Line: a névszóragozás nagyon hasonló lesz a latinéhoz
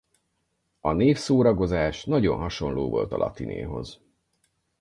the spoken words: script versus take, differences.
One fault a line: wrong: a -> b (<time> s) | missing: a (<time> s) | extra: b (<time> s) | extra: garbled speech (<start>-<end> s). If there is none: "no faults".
wrong: lesz -> volt (2.9 s)